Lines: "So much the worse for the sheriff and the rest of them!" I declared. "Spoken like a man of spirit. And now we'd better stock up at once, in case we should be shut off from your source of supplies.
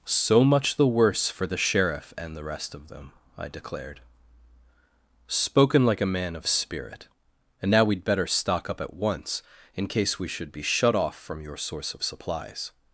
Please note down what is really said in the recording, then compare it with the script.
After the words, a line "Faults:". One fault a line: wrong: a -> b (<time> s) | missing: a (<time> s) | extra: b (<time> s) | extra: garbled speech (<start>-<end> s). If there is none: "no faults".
"So much the worse for the sheriff and the rest of them!" I declared. "Spoken like a man of spirit. And now we'd better stock up at once, in case we should be shut off from your source of supplies.
Faults:
no faults